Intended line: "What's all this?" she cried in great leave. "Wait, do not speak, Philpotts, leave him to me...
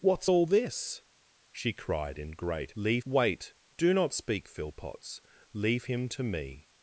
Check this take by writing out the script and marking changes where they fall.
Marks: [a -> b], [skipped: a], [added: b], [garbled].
"What's all this?" she cried in great leave. "Wait, do not speak, Philpotts, leave him to me...